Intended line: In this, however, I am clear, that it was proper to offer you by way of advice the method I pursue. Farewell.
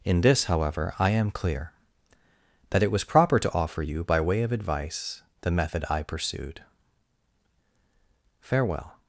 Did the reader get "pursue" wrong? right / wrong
wrong